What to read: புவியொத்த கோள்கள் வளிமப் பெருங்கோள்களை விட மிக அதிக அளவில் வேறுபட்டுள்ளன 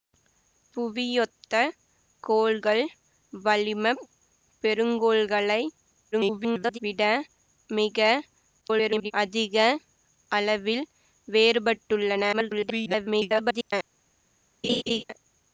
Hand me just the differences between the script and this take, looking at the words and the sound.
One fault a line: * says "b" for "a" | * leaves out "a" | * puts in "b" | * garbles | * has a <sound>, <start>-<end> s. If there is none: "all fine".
* garbles
* garbles
* garbles
* has a laugh, 14.6-15.0 s